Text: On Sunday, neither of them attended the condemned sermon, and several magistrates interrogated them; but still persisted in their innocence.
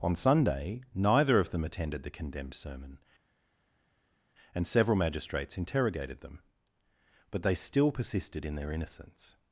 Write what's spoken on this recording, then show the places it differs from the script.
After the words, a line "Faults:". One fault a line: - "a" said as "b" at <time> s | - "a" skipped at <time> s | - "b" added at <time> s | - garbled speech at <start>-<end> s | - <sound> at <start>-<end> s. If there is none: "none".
On Sunday, neither of them attended the condemned sermon, and several magistrates interrogated them; but they still persisted in their innocence.
Faults:
- "they" added at 7.4 s